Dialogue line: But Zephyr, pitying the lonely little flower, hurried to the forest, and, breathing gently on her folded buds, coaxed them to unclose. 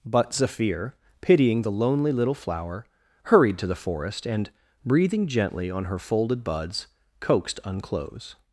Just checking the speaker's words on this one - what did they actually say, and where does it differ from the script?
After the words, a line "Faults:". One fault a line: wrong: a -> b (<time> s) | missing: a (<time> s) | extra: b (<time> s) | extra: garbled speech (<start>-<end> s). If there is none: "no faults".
But Zephyr, pitying the lonely little flower, hurried to the forest, and, breathing gently on her folded buds, coaxed unclose.
Faults:
missing: them to (7.6 s)